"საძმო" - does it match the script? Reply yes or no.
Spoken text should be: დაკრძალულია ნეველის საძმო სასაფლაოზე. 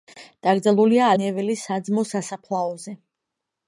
yes